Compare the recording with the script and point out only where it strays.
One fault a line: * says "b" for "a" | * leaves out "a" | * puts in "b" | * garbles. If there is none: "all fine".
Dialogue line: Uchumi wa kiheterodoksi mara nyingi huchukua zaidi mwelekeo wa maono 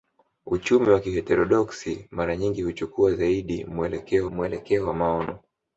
* puts in "mwelekeo"